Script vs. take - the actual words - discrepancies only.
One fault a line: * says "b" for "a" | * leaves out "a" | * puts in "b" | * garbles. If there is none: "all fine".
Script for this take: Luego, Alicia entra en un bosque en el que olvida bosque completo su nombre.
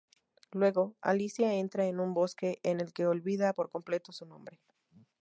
* says "por" for "bosque"